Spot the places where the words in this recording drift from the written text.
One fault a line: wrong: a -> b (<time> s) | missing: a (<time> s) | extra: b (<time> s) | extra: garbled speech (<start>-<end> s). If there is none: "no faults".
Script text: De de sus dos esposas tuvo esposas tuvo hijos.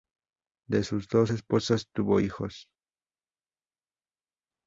missing: de (0.8 s)
missing: esposas tuvo (2.2 s)